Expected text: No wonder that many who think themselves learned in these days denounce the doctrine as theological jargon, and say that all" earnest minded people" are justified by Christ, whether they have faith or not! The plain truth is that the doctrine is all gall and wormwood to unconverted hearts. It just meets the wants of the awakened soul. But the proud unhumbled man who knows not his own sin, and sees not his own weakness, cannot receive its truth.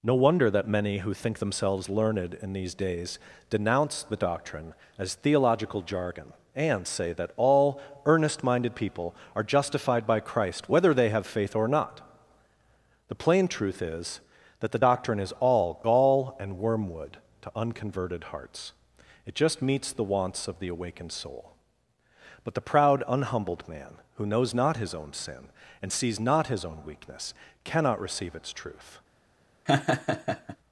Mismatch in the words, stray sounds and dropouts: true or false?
true